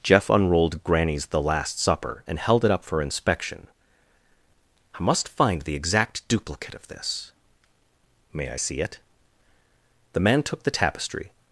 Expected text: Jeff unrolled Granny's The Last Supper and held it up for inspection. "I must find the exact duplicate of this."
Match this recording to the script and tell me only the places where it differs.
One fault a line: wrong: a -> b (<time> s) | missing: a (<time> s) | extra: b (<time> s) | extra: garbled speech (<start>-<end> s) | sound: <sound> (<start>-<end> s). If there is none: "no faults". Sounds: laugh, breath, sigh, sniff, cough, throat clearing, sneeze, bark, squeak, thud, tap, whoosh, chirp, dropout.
extra: May I see it The man took the tapestry (8.3 s)